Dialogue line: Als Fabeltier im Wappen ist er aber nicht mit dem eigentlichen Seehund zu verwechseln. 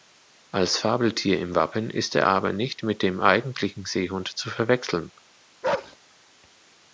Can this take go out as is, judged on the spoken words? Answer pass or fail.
pass